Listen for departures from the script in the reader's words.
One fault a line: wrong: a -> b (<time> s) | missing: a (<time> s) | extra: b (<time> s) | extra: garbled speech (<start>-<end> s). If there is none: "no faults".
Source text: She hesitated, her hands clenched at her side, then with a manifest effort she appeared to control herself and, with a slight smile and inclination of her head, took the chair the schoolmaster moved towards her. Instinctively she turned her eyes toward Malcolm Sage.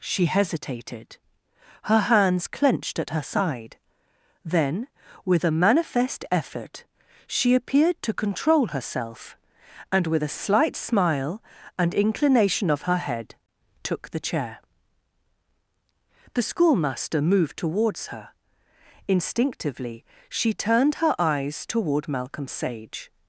no faults